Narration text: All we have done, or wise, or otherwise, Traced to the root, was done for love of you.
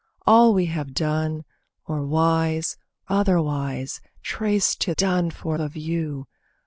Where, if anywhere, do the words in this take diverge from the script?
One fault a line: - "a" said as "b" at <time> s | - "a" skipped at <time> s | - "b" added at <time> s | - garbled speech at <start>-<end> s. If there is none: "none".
- "or" skipped at 2.8 s
- "the root was" skipped at 4.9 s
- "love" skipped at 5.6 s